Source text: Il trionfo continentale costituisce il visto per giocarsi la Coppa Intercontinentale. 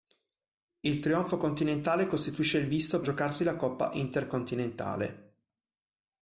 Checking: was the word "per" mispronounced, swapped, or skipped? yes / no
yes